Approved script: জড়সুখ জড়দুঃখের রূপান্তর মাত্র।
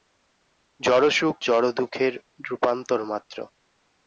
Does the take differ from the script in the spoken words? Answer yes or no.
no